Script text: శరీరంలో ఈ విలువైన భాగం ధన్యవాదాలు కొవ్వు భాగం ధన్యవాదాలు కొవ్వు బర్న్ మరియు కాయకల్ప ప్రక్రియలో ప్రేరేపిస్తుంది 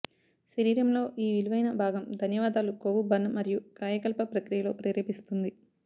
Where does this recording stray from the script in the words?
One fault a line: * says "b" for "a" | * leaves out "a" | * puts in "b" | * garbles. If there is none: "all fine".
* leaves out "భాగం ధన్యవాదాలు కొవ్వు"